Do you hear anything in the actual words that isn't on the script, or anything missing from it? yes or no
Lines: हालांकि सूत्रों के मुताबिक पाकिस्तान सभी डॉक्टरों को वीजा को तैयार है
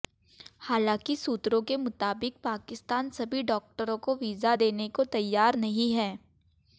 yes